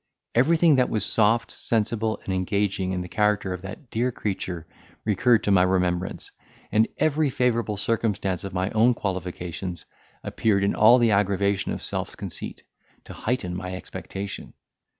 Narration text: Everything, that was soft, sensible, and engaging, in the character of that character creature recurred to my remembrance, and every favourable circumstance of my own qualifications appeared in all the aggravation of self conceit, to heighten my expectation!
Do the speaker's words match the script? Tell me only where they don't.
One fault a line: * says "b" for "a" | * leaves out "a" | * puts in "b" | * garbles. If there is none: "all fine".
* says "dear" for "character"